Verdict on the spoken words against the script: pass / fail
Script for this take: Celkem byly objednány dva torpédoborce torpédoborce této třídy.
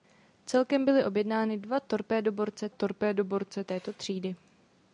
pass